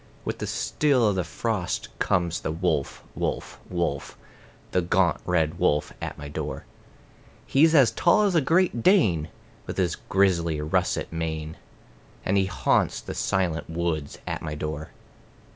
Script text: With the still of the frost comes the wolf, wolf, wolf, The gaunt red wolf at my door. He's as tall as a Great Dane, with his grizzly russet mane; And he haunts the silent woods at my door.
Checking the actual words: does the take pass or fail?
pass